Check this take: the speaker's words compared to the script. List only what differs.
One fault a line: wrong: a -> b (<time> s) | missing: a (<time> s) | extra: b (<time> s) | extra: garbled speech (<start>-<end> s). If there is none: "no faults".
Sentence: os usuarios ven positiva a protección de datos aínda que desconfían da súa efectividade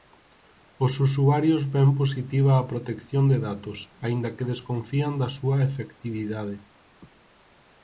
no faults